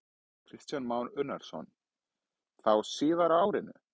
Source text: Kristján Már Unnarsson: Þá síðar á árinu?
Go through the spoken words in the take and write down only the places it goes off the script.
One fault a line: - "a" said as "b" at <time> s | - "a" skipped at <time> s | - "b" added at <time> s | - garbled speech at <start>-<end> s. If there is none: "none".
none